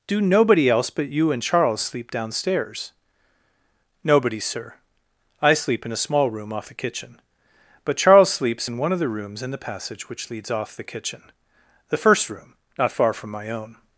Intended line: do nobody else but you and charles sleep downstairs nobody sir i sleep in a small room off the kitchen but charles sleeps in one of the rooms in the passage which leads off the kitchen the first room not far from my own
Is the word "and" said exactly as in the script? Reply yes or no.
yes